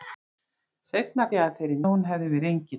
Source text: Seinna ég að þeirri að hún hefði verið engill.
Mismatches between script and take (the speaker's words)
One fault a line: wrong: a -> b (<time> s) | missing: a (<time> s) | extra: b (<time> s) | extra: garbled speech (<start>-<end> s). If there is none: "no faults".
no faults